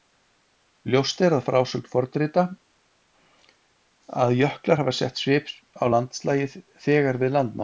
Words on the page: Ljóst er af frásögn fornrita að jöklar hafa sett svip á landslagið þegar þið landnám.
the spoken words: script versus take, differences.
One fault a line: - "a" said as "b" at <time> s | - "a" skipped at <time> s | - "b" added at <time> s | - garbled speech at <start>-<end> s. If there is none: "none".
- "þið" said as "við" at 7.2 s